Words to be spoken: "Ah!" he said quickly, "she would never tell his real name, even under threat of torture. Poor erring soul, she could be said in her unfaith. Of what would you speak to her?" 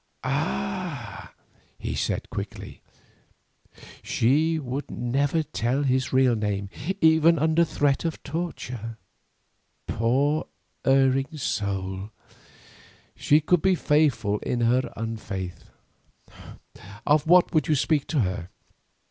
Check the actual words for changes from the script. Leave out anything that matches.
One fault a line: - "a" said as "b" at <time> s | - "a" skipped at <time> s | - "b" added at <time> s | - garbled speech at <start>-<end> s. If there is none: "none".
- "said" said as "faithful" at 13.8 s